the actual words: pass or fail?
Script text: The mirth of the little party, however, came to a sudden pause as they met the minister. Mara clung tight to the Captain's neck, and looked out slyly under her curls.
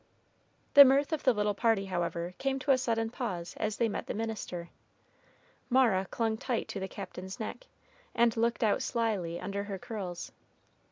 pass